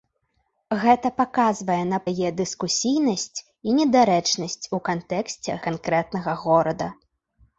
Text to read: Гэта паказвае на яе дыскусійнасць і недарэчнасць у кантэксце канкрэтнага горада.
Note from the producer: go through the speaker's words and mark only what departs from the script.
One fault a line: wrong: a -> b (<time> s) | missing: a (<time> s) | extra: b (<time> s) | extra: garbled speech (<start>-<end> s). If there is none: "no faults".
no faults